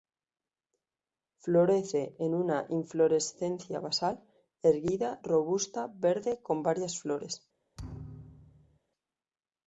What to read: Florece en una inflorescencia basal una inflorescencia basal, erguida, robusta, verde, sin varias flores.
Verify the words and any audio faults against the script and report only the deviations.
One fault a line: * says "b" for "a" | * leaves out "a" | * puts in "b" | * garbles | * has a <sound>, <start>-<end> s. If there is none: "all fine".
* leaves out "una inflorescencia basal"
* says "con" for "sin"
* has a thud, 7.8-8.8 s